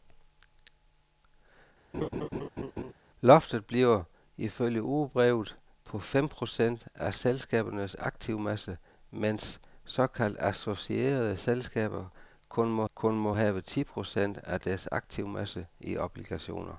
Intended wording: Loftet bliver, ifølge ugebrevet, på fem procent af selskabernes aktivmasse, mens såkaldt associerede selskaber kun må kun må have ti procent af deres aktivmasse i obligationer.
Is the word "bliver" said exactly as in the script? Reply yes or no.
yes